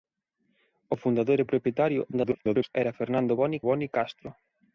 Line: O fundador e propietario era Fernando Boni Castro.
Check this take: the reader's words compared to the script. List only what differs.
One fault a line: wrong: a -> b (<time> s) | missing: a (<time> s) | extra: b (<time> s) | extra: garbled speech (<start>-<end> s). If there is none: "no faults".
extra: garbled speech (2.1-2.8 s)
extra: Boni (3.7 s)